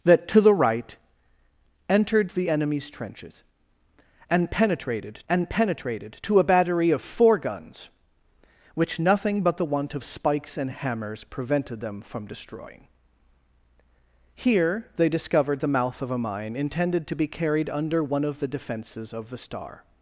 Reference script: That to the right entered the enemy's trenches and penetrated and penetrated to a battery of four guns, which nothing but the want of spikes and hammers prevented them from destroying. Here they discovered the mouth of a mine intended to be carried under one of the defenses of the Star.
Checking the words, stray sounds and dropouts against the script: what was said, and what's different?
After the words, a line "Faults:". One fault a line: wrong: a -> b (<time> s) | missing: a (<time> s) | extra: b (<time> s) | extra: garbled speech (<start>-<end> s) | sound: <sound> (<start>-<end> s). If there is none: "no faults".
That to the right entered the enemy's trenches and penetrated and penetrated to a battery of four guns, which nothing but the want of spikes and hammers prevented them from destroying. Here they discovered the mouth of a mine intended to be carried under one of the defenses of the Star.
Faults:
no faults